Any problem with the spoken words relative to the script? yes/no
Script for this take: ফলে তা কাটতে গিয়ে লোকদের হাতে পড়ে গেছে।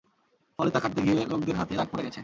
yes